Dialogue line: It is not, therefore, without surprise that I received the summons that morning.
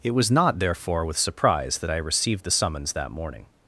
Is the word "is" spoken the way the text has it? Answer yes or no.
no